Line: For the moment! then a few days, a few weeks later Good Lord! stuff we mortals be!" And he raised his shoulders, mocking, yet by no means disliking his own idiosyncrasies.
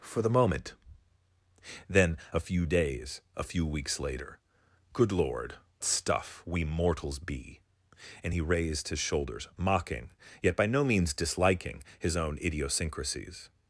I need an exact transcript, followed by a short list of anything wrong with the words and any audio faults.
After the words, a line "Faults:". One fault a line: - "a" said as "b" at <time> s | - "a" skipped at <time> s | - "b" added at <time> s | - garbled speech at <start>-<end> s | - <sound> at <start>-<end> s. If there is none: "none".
For the moment! then a few days, a few weeks later Good Lord! stuff we mortals be!" And he raised his shoulders, mocking, yet by no means disliking his own idiosyncrasies.
Faults:
none